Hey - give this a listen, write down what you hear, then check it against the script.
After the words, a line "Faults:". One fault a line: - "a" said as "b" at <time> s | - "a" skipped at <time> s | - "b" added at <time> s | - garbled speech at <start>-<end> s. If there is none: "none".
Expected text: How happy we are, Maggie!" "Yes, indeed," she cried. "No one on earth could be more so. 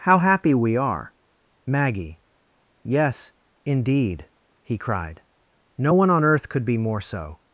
How happy we are, Maggie!" "Yes, indeed," he cried. "No one on earth could be more so.
Faults:
- "she" said as "he" at 4.6 s